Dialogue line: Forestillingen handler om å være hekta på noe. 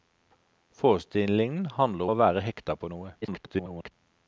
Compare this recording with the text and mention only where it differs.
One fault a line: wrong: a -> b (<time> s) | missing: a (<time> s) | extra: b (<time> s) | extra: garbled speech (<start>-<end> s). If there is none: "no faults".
missing: om (2.1 s)
extra: garbled speech (3.2-3.9 s)